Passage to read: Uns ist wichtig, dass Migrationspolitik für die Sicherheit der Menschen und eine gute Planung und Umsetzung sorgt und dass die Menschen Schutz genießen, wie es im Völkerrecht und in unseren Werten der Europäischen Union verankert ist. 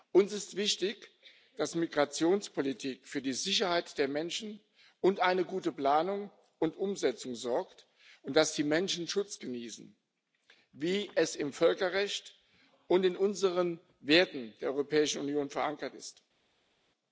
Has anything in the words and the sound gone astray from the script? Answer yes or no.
no